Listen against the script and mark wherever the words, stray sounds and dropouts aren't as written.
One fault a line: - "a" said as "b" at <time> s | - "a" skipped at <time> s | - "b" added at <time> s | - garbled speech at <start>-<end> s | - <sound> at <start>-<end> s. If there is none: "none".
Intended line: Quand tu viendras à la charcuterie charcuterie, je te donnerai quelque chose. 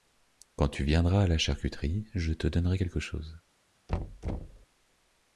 - "charcuterie" skipped at 2.1 s
- thud at 3.9-4.7 s